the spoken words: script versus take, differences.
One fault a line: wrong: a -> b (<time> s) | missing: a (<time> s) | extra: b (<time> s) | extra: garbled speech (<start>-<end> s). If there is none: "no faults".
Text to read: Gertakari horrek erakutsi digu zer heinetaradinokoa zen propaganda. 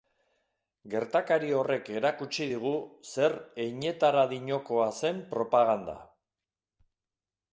no faults